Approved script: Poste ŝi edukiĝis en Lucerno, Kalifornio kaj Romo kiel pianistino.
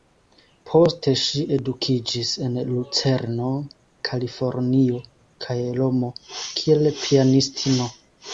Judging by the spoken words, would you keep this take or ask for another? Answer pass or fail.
pass